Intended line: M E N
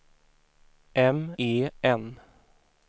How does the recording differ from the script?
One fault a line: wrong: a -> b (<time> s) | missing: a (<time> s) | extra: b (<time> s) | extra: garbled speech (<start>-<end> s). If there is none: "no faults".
no faults